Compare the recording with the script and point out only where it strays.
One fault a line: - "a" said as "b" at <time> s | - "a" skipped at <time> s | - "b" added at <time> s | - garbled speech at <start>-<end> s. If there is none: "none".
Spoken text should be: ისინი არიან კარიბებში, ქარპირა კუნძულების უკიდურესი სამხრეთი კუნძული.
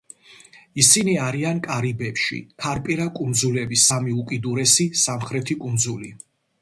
- "სამი" added at 3.9 s